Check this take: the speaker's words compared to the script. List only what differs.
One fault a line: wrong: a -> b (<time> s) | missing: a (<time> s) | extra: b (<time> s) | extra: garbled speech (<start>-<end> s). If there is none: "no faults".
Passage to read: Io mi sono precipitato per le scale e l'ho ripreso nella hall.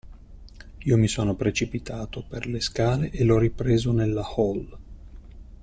no faults